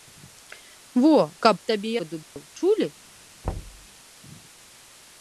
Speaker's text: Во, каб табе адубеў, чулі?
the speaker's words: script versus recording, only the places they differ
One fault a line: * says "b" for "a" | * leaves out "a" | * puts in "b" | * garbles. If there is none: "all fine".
all fine